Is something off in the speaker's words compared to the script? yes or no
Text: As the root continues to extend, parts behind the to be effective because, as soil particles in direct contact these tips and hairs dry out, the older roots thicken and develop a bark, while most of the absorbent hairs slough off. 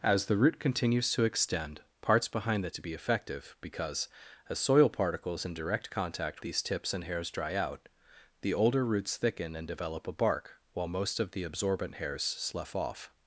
no